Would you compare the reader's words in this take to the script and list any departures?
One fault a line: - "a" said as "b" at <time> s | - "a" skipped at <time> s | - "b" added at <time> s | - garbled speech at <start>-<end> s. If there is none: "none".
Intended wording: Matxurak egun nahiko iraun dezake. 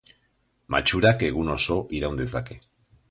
- "nahiko" said as "oso" at 1.6 s